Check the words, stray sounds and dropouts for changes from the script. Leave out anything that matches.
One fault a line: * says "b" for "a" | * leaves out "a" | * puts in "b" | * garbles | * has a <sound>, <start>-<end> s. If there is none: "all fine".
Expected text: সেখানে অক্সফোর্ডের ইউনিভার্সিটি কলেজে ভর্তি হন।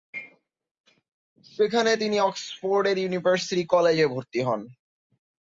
* puts in "তিনি"